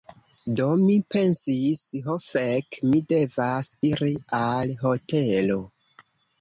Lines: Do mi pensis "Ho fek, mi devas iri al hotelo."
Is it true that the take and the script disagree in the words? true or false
false